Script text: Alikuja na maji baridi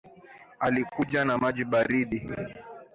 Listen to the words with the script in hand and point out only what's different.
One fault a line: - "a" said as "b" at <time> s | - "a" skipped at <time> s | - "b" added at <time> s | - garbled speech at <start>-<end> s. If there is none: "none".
none